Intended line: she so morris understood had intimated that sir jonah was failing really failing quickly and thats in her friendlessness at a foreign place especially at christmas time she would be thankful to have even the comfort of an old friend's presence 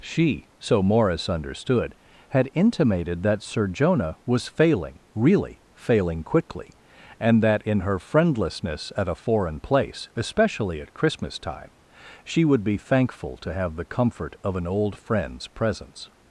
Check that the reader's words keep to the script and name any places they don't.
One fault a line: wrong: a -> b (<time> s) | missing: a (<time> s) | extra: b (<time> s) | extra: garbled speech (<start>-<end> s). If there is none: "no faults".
wrong: thats -> that (7.4 s)
missing: even (13.8 s)